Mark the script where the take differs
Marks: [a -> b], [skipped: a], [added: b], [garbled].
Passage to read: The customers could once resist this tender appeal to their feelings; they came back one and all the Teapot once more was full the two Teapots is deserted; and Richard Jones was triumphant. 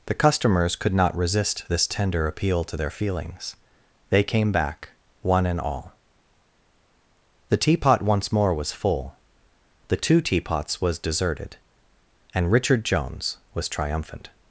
The customers could [once -> not] resist this tender appeal to their feelings; they came back one and all the Teapot once more was full the two Teapots [is -> was] deserted; and Richard Jones was triumphant.